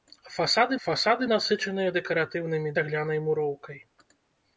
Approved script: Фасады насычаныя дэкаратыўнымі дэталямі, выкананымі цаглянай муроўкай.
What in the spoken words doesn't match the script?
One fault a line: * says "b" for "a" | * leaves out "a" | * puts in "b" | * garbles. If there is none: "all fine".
* puts in "фасады"
* leaves out "дэталямі выкананымі"